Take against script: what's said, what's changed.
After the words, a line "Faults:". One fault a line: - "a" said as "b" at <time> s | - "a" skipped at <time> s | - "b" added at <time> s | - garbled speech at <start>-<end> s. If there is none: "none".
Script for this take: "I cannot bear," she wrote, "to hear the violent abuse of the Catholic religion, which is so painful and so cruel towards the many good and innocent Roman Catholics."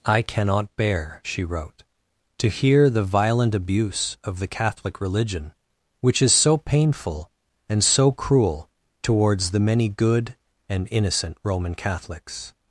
"I cannot bear," she wrote, "to hear the violent abuse of the Catholic religion, which is so painful and so cruel towards the many good and innocent Roman Catholics."
Faults:
none